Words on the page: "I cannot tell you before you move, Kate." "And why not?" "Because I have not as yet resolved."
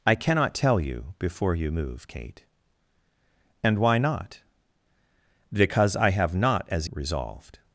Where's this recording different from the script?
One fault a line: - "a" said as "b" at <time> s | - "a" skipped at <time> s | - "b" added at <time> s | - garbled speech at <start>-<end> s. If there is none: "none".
- "yet" skipped at 6.9 s